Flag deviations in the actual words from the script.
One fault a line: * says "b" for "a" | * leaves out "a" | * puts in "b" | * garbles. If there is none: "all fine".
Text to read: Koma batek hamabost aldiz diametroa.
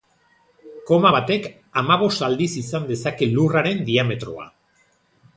* puts in "izan dezake Lurraren"